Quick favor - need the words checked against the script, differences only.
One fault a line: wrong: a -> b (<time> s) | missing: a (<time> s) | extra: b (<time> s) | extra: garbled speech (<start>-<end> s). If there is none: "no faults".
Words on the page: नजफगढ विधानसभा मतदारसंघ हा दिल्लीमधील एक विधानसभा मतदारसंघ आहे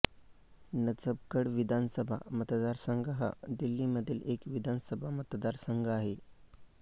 no faults